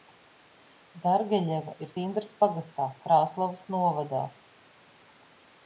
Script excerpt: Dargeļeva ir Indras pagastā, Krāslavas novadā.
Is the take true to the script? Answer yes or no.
yes